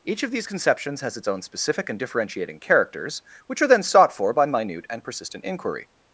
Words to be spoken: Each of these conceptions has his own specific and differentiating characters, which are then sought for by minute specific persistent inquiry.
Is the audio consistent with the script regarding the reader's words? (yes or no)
no